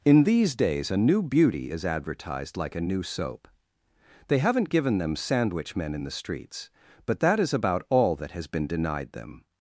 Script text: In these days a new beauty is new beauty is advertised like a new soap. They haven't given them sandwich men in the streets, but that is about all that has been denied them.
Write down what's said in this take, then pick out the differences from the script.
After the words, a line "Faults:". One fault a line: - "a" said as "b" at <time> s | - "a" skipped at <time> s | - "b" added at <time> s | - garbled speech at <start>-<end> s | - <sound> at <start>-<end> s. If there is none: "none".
In these days a new beauty is advertised like a new soap. They haven't given them sandwich men in the streets, but that is about all that has been denied them.
Faults:
- "new beauty is" skipped at 1.8 s